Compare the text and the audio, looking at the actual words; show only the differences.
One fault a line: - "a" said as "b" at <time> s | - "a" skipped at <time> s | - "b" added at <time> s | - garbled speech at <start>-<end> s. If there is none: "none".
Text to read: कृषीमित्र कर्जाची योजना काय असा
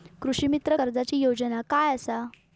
none